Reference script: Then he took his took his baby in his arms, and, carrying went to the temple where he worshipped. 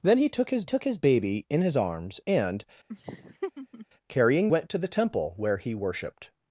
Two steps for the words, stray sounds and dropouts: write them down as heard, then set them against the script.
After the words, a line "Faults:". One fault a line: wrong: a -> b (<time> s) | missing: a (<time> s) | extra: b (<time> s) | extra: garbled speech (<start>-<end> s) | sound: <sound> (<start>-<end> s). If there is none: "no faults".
Then he took his took his baby in his arms, and, carrying went to the temple where he worshipped.
Faults:
sound: laugh (2.9-3.9 s)